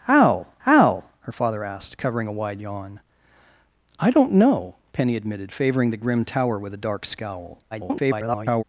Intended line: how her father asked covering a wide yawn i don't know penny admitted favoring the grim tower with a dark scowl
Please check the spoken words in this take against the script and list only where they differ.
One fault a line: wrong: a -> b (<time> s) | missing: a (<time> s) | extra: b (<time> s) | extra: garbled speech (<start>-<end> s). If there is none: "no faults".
extra: how (0.6 s)
extra: garbled speech (7.7-8.6 s)